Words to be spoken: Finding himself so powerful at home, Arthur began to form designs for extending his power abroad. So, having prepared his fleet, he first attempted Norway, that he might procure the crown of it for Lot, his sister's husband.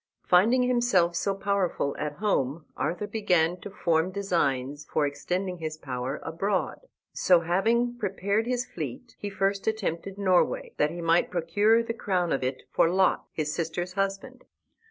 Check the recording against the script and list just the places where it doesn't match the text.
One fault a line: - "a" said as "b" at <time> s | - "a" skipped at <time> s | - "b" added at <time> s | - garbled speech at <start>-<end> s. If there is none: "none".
none